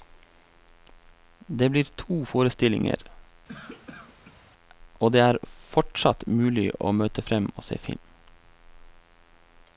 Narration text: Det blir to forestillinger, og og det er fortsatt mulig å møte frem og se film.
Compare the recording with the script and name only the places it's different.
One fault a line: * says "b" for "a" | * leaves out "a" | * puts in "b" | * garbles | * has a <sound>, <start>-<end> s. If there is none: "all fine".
* has a cough, 3.5-4.5 s
* leaves out "og"